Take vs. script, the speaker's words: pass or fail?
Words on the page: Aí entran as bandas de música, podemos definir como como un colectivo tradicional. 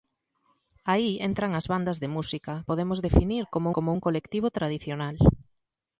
pass